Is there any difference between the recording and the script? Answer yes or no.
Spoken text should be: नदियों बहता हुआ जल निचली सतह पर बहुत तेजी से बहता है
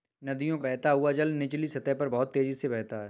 no